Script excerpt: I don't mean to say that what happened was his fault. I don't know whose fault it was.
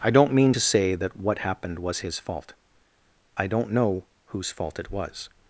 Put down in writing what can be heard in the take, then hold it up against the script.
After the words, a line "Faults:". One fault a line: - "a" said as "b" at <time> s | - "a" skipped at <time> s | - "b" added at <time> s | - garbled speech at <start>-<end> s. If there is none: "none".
I don't mean to say that what happened was his fault. I don't know whose fault it was.
Faults:
none